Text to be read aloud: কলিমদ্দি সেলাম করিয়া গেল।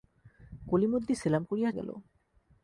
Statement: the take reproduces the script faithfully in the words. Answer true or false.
true